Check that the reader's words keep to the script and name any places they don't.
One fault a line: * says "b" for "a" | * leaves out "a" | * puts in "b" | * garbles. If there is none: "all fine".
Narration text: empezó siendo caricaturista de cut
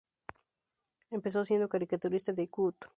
all fine